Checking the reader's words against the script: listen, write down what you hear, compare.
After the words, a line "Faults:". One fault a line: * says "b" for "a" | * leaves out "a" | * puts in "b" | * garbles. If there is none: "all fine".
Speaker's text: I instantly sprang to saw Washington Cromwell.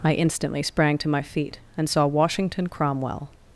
I instantly sprang to my feet and saw Washington Cromwell.
Faults:
* puts in "my feet and"